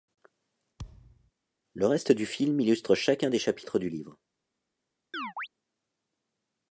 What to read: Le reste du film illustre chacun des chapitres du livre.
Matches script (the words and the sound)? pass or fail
fail